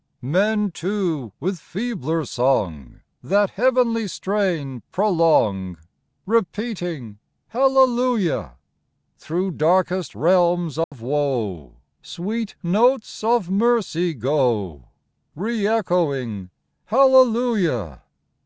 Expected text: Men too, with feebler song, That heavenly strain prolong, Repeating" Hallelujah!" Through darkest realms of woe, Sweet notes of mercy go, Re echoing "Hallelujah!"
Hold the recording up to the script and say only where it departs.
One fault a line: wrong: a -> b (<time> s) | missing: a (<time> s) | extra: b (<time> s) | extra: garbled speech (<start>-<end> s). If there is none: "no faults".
no faults